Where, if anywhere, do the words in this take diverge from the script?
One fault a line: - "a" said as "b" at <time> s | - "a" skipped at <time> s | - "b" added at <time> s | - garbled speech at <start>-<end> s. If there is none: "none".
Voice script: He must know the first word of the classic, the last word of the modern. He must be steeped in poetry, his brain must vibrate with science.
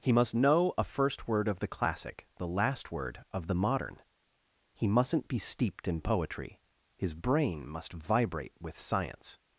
- "the" said as "a" at 0.8 s
- "must" said as "mustn't" at 4.9 s